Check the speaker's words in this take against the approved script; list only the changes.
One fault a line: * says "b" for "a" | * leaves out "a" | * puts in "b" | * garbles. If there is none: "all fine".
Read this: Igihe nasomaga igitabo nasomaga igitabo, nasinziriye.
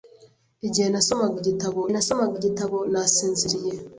all fine